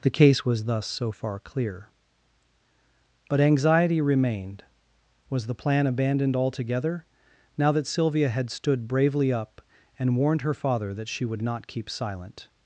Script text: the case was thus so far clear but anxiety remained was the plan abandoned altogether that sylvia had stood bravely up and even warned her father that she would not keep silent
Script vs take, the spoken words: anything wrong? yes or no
yes